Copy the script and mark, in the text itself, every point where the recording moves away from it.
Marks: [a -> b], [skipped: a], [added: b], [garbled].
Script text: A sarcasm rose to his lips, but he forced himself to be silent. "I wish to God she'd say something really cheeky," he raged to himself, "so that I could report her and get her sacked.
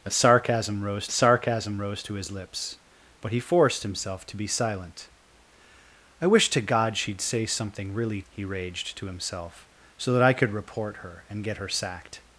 A sarcasm rose [added: sarcasm rose] to his lips, but he forced himself to be silent. "I wish to God she'd say something really [skipped: cheeky,"] he raged to himself, "so that I could report her and get her sacked.